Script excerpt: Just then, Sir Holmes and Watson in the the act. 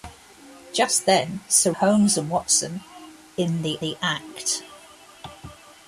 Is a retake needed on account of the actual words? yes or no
no